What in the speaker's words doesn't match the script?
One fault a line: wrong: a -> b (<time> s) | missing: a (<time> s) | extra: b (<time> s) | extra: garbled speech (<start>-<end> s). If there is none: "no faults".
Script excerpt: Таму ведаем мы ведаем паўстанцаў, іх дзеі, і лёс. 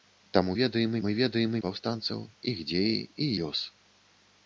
no faults